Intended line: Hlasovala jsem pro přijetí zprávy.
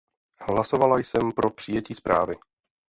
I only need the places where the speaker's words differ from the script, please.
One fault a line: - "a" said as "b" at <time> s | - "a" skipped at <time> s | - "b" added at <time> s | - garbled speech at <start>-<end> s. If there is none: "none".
none